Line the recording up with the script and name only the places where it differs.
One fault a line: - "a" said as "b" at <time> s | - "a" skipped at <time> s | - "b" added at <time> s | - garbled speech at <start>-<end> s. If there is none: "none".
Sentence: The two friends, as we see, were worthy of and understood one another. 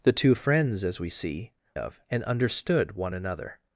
- "were worthy" skipped at 1.5 s